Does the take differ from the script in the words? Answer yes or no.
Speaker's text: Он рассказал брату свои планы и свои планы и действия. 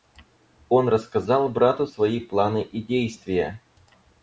yes